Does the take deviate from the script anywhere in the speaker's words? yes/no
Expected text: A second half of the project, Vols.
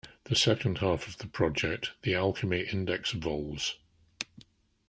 yes